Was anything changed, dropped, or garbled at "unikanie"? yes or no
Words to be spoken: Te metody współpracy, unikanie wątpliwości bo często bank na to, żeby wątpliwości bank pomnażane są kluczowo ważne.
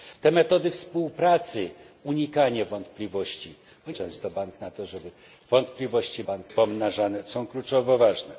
no